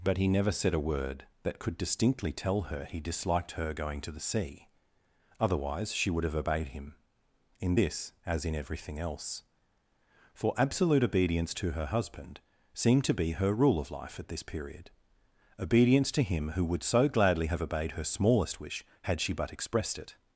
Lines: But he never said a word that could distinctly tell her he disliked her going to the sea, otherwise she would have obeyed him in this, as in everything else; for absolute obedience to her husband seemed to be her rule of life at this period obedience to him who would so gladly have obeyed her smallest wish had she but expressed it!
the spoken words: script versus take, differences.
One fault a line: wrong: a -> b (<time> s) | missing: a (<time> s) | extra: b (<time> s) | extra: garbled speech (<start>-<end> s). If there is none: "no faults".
no faults